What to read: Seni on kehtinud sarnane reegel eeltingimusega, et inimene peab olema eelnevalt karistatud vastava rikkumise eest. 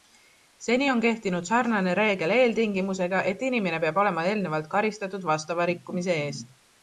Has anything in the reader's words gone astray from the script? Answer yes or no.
no